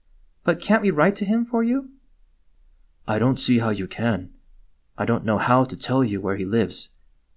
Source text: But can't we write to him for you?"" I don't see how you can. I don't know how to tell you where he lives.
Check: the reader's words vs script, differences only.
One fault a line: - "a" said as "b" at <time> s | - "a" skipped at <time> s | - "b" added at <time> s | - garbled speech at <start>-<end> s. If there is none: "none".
none